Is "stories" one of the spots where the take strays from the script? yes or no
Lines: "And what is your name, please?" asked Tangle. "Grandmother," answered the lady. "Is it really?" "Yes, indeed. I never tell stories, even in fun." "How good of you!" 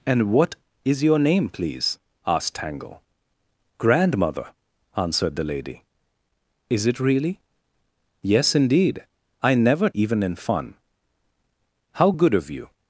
yes